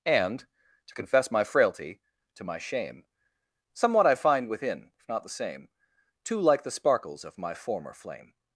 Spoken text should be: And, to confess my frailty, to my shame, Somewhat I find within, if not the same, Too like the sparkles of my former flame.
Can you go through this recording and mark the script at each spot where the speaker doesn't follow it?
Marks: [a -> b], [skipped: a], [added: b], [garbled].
And, to confess my frailty, to my shame, Somewhat I find within, if not the same, Too like the sparkles of my former flame.